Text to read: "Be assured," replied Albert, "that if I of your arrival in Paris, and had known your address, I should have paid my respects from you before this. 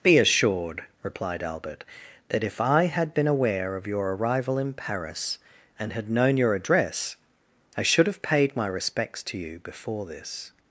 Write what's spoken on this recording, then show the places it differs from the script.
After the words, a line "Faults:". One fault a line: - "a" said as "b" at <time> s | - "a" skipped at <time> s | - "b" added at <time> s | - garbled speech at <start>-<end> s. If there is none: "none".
"Be assured," replied Albert, "that if I had been aware of your arrival in Paris, and had known your address, I should have paid my respects to you before this.
Faults:
- "had been aware" added at 2.9 s
- "from" said as "to" at 9.2 s